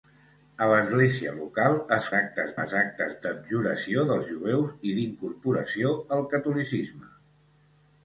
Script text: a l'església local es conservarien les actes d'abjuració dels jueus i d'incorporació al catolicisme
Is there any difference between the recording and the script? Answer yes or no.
yes